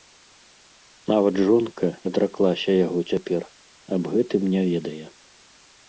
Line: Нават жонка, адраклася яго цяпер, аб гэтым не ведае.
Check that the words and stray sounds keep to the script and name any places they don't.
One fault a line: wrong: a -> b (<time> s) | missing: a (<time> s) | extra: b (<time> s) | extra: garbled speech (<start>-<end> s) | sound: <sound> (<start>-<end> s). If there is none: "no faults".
no faults